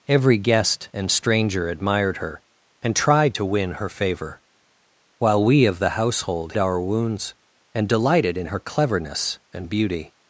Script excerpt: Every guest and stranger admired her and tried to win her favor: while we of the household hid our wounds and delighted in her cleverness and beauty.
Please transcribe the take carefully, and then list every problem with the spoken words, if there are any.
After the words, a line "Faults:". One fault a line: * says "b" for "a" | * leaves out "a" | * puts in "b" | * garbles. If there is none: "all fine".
Every guest and stranger admired her and tried to win her favor: while we of the household our wounds and delighted in her cleverness and beauty.
Faults:
* leaves out "hid"